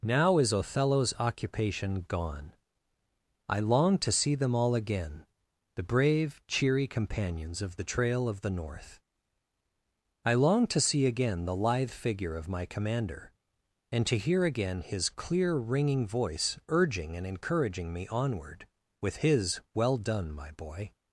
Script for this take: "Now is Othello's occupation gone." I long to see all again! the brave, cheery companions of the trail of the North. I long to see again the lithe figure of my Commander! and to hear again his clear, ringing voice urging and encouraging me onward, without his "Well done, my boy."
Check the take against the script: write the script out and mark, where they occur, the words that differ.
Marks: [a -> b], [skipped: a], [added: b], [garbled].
"Now is Othello's occupation gone." I long to see [added: them] all again! the brave, cheery companions of the trail of the North. I long to see again the lithe figure of my Commander! and to hear again his clear, ringing voice urging and encouraging me onward, [without -> with] his "Well done, my boy."